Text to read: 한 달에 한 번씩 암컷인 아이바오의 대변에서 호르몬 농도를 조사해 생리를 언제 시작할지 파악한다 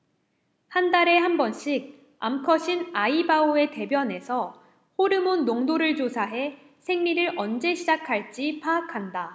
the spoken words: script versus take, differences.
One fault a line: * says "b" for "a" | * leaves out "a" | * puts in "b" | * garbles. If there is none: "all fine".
all fine